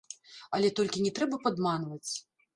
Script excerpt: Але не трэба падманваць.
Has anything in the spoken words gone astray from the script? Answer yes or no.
yes